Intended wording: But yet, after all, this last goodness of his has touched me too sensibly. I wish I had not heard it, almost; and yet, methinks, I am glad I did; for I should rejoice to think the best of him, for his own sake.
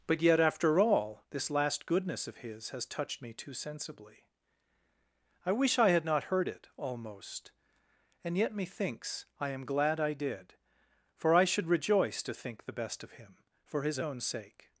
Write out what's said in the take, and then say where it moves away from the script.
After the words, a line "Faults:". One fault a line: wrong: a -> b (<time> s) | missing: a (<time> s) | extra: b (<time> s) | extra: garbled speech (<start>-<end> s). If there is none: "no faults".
But yet, after all, this last goodness of his has touched me too sensibly. I wish I had not heard it, almost; and yet, methinks, I am glad I did; for I should rejoice to think the best of him, for his own sake.
Faults:
no faults